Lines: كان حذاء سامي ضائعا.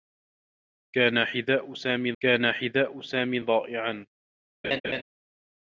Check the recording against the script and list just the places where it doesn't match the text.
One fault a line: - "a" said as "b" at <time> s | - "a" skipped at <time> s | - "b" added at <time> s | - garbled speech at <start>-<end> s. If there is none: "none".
- "كان حذاء سامي" added at 2.2 s